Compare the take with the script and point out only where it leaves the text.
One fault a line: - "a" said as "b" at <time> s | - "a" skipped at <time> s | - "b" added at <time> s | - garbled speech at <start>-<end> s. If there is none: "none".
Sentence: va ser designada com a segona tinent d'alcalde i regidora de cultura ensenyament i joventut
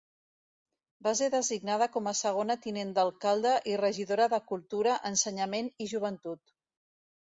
none